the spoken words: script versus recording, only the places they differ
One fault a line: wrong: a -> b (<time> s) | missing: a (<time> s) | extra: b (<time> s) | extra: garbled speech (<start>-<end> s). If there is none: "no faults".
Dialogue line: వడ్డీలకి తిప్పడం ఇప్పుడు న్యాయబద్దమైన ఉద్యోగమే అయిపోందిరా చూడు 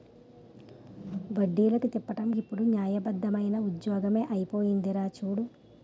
no faults